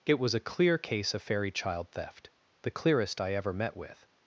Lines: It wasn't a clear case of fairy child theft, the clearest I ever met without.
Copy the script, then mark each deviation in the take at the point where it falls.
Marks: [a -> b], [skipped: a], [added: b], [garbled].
It [wasn't -> was] a clear case of fairy child theft, the clearest I ever met [without. -> with]